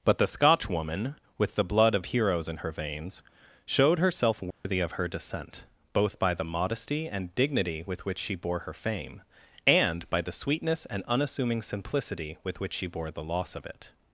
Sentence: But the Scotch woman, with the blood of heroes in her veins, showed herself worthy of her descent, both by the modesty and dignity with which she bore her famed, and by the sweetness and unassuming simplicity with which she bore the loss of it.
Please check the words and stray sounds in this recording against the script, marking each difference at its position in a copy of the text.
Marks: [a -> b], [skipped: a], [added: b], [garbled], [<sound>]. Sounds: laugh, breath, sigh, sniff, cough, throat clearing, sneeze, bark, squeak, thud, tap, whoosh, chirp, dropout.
But the Scotch woman, with the blood of heroes in her veins, showed herself worthy [dropout] of her descent, both by the modesty and dignity with which she bore her [famed, -> fame] and by the sweetness and unassuming simplicity with which she bore the loss of it.